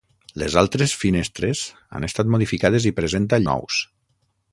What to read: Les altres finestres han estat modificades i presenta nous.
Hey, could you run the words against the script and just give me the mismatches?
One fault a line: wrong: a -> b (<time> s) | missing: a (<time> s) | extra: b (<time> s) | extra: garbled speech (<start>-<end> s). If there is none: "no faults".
no faults